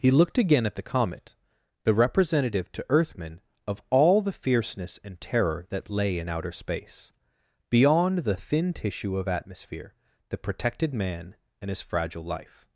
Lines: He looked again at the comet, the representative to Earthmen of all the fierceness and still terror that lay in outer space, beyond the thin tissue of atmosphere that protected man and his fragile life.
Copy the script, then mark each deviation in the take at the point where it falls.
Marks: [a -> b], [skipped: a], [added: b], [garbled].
He looked again at the comet, the representative to Earthmen of all the fierceness and [skipped: still] terror that lay in outer space, beyond the thin tissue of atmosphere that protected man and his fragile life.